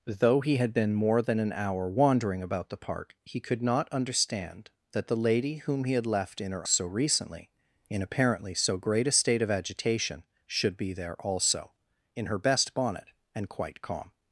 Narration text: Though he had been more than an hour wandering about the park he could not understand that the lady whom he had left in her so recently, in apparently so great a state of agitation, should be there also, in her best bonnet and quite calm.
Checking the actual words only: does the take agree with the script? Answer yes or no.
yes